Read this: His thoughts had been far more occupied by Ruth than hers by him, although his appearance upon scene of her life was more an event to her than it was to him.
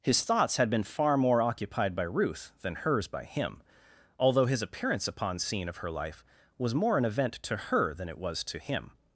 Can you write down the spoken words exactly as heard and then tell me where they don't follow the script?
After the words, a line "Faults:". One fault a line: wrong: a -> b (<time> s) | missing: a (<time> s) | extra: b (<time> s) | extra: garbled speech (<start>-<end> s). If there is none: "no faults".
His thoughts had been far more occupied by Ruth than hers by him, although his appearance upon scene of her life was more an event to her than it was to him.
Faults:
no faults